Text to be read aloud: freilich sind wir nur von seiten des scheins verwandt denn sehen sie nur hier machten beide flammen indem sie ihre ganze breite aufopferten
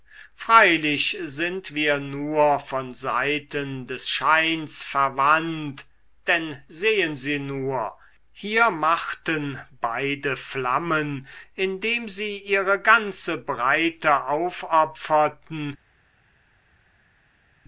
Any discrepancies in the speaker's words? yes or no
no